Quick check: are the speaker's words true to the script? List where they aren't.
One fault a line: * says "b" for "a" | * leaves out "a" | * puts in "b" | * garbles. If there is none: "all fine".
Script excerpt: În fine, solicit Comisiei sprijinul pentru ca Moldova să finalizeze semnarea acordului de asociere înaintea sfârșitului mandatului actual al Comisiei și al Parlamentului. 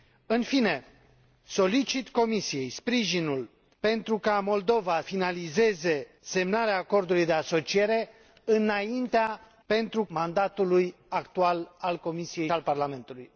* leaves out "să"
* says "pentru" for "sfârșitului"
* leaves out "și"